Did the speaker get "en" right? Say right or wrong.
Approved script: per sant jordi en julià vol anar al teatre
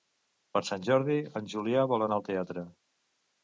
right